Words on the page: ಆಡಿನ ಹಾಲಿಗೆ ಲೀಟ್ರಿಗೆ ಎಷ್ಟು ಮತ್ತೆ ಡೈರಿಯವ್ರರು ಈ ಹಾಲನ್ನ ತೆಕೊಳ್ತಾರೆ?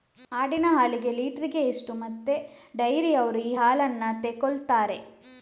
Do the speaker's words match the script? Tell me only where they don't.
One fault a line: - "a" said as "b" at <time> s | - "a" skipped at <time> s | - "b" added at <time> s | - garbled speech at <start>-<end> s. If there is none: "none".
none